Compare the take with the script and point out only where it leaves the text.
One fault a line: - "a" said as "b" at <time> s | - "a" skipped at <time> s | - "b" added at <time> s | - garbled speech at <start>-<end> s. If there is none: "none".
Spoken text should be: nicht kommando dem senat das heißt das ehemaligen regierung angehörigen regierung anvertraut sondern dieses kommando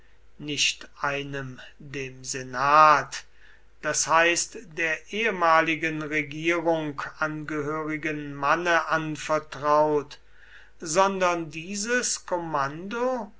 - "kommando" said as "einem" at 1.0 s
- "das" said as "der" at 4.8 s
- "regierung" said as "manne" at 8.3 s